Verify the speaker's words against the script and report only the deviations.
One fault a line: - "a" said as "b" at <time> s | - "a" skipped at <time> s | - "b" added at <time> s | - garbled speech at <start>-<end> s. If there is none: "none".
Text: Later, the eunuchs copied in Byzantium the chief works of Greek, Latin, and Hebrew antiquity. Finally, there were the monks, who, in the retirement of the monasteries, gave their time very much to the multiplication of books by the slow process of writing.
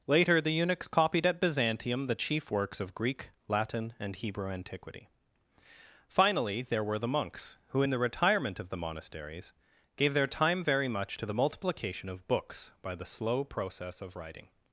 - "in" said as "at" at 1.3 s